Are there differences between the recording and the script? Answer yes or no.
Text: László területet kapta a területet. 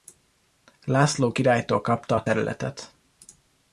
yes